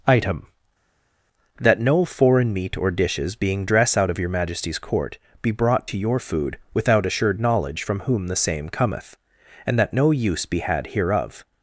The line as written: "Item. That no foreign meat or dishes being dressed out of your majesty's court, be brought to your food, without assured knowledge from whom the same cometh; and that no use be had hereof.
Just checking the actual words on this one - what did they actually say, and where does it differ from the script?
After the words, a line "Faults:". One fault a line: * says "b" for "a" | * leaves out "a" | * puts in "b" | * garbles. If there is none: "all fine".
"Item. That no foreign meat or dishes being dress out of your majesty's court, be brought to your food, without assured knowledge from whom the same cometh; and that no use be had hereof.
Faults:
* says "dress" for "dressed"